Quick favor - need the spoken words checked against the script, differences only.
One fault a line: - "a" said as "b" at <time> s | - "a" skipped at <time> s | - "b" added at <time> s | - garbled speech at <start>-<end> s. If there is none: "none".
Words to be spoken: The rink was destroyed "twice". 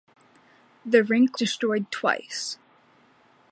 - "was" skipped at 1.4 s